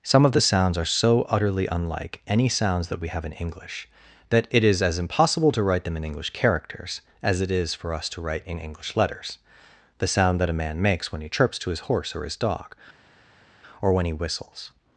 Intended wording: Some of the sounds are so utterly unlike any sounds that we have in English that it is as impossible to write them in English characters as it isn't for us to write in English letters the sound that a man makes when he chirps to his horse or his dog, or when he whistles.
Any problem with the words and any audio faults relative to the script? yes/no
yes